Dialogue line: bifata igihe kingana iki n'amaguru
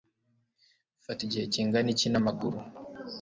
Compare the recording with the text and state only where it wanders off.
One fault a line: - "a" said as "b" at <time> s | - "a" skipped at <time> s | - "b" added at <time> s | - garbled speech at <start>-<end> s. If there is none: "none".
none